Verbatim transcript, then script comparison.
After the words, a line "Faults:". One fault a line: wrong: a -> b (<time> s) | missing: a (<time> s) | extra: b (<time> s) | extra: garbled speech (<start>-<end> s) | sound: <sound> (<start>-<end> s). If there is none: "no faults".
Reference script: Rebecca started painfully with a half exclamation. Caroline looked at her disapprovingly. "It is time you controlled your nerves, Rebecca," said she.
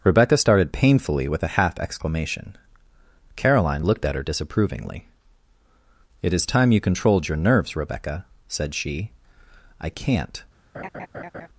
Rebecca started painfully with a half exclamation. Caroline looked at her disapprovingly. "It is time you controlled your nerves, Rebecca," said she. "I can't
Faults:
extra: I can't (9.8 s)
sound: laugh (10.7-11.5 s)